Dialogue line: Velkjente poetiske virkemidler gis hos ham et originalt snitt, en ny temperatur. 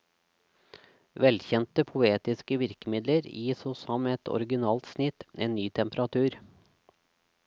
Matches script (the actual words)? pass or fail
pass